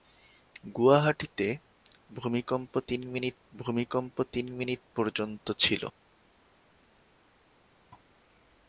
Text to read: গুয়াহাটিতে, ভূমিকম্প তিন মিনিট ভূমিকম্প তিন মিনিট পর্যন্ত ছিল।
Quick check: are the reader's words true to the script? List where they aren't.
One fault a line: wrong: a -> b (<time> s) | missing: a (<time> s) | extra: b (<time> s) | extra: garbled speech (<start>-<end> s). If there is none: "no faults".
no faults